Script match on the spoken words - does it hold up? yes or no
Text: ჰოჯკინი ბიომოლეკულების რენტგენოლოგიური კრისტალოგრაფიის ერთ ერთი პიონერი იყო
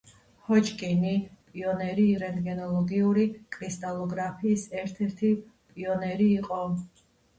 no